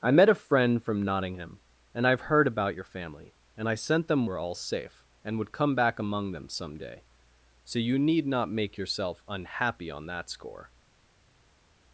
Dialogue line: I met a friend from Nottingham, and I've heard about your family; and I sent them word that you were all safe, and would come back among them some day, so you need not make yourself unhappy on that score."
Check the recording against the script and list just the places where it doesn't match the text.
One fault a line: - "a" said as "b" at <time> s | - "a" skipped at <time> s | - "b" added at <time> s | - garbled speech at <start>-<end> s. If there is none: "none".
- "word that you" skipped at 4.3 s